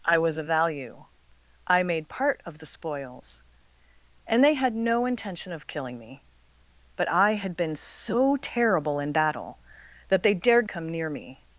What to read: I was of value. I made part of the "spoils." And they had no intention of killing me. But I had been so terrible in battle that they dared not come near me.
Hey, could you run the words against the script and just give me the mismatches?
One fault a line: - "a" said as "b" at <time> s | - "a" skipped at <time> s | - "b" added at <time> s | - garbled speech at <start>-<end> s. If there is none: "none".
- "not" skipped at 10.7 s